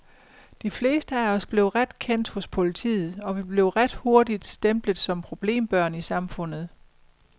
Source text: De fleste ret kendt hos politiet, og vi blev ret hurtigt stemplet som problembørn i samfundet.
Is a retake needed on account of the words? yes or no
yes